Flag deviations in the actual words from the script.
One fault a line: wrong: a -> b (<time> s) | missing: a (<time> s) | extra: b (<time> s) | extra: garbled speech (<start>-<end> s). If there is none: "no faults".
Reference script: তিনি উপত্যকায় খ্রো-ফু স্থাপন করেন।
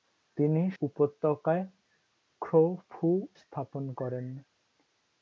no faults